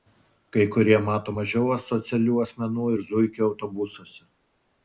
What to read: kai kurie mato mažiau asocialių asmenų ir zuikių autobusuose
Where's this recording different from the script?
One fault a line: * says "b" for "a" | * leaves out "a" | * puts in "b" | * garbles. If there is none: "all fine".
all fine